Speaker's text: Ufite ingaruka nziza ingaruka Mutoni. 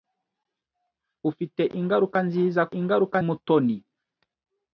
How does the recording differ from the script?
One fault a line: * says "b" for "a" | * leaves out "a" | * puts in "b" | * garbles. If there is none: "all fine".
all fine